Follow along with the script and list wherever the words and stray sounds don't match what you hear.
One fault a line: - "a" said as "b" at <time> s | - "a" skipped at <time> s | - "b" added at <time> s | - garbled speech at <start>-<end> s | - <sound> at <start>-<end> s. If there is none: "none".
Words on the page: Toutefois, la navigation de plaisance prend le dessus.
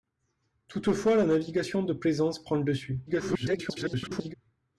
- garbled speech at 3.1-4.3 s